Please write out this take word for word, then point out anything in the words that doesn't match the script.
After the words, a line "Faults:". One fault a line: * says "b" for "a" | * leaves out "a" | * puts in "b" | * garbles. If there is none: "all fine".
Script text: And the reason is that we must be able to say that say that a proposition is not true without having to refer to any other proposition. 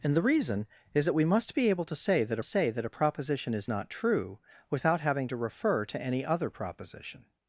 And the reason is that we must be able to say that say that a proposition is not true without having to refer to any other proposition.
Faults:
all fine